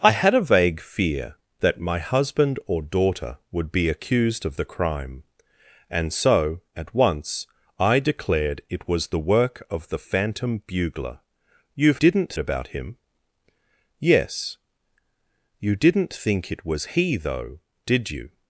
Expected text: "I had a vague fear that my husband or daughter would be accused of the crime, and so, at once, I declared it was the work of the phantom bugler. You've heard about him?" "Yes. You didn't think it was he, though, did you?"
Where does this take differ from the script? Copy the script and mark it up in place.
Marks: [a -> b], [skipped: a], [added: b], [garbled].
"I had a vague fear that my husband or daughter would be accused of the crime, and so, at once, I declared it was the work of the phantom bugler. You've [heard -> didn't] about him?" "Yes. You didn't think it was he, though, did you?"